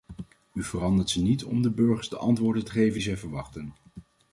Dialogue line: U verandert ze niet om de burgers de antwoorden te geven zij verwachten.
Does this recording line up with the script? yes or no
yes